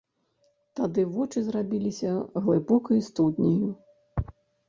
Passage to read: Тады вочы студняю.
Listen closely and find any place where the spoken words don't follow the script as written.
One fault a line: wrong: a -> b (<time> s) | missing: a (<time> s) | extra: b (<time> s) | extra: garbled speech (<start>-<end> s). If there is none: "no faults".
extra: зрабіліся глыбокай (1.5 s)